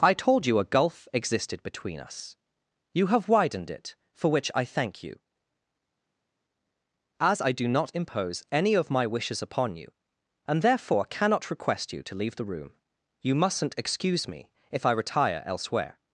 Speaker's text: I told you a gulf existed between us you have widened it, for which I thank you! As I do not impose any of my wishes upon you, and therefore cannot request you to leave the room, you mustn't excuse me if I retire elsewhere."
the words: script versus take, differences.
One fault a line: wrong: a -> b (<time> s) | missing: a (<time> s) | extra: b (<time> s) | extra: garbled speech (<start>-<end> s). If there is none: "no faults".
no faults